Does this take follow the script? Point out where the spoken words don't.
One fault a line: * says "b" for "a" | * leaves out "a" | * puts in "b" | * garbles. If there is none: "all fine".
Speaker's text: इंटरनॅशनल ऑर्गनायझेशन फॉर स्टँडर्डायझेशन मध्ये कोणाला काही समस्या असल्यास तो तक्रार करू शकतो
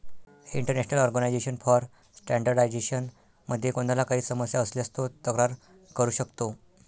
all fine